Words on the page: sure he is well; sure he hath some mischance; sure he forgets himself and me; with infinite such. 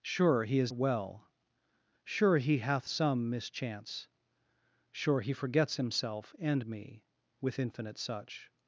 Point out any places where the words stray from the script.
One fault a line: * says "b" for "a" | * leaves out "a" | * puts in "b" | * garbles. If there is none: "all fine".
all fine